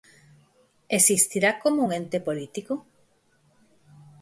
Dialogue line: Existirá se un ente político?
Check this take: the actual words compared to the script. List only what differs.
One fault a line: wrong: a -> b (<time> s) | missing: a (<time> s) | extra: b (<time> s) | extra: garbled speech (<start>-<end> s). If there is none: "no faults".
wrong: se -> como (1.6 s)